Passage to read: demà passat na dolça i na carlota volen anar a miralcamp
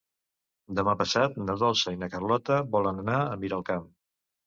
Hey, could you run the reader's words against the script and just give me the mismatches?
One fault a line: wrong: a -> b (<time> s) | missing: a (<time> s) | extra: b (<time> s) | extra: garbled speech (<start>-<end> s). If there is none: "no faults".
no faults